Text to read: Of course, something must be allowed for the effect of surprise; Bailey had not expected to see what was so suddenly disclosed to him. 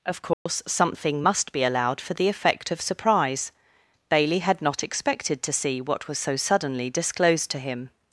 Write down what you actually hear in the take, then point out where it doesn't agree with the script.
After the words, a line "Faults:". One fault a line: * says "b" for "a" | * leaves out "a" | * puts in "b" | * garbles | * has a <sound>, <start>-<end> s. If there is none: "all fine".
Of course, something must be allowed for the effect of surprise; Bailey had not expected to see what was so suddenly disclosed to him.
Faults:
* has a dropout, 0.3-0.5 s